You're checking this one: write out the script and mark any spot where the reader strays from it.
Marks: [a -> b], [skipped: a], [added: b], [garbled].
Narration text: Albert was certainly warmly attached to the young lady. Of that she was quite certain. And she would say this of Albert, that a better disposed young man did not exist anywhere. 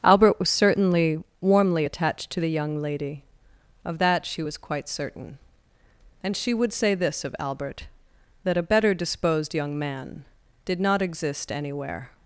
Albert was certainly warmly attached to the young lady. Of that she was quite certain. And she would say this of Albert, that a better disposed young man did not exist anywhere.